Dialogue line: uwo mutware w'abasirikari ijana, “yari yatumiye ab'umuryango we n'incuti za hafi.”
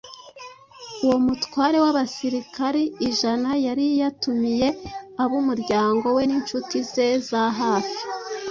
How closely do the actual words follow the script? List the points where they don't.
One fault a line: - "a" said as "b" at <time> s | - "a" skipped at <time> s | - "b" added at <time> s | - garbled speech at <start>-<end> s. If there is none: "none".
- "ze" added at 6.9 s